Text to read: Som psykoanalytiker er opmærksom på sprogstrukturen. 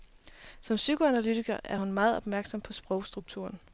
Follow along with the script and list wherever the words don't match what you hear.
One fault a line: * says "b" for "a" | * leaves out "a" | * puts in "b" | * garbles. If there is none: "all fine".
* puts in "hun meget"